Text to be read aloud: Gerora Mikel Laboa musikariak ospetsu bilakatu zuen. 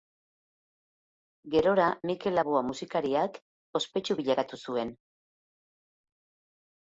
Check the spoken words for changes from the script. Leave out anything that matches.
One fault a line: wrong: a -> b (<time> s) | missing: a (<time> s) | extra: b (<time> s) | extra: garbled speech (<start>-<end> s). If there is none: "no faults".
no faults